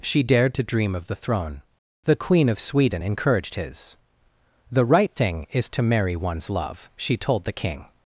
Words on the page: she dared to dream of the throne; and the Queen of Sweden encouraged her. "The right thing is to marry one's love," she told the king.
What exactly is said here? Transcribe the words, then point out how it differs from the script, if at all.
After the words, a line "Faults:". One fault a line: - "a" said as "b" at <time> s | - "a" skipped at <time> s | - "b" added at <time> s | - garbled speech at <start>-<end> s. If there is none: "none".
she dared to dream of the throne; the Queen of Sweden encouraged his. "The right thing is to marry one's love," she told the king.
Faults:
- "and" skipped at 1.6 s
- "her" said as "his" at 3.5 s